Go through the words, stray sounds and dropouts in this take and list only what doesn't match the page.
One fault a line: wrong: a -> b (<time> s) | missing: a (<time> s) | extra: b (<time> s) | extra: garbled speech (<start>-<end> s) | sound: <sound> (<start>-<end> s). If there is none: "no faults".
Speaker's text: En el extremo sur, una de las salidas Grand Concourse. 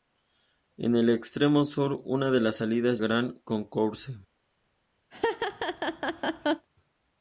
sound: laugh (5.1-6.7 s)